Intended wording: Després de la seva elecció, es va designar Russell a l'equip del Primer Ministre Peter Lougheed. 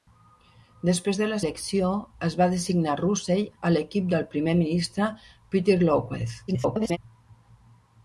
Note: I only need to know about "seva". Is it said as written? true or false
false